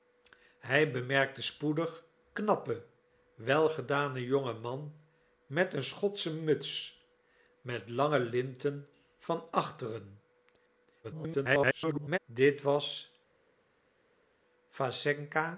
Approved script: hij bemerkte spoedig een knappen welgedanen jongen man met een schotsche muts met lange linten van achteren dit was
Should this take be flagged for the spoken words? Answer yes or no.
yes